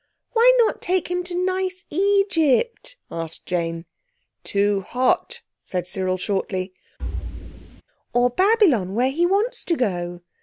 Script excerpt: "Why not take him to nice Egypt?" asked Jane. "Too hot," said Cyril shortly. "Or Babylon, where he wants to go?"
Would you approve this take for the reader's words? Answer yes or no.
yes